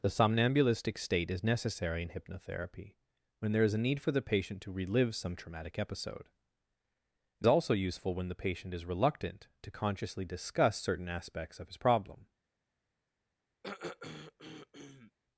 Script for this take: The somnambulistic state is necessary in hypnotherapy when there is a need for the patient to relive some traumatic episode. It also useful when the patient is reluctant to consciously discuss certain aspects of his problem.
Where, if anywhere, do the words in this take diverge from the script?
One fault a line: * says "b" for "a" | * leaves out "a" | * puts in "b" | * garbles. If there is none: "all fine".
all fine